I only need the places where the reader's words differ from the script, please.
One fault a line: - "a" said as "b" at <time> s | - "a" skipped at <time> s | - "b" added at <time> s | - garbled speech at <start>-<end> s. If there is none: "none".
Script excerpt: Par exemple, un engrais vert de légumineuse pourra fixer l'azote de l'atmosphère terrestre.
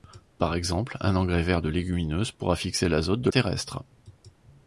- "l'atmosphère" skipped at 3.3 s